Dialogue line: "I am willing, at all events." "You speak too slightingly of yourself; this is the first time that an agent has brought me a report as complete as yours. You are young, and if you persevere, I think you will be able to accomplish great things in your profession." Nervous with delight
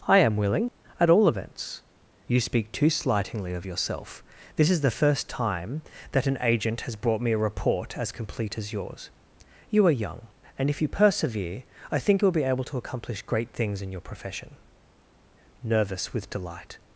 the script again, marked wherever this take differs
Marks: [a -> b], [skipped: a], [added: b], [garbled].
"I am willing, at all events." "You speak too slightingly of yourself; this is the first time that an agent has brought me a report as complete as yours. You are young, and if you persevere, I think you will be able to accomplish great things in your profession." Nervous with delight